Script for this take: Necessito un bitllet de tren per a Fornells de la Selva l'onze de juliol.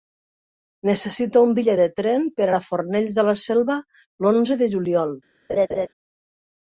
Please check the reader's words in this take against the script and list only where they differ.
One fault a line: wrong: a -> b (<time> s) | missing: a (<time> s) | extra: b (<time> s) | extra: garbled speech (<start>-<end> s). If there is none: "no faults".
no faults